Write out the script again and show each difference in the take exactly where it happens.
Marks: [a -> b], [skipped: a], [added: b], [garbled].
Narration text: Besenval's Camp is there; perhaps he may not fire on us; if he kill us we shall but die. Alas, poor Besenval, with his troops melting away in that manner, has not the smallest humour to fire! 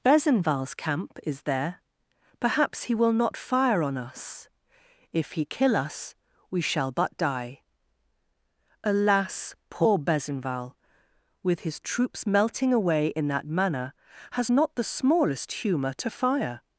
Besenval's Camp is there; perhaps he [may -> will] not fire on us; if he kill us we shall but die. Alas, poor Besenval, with his troops melting away in that manner, has not the smallest humour to fire!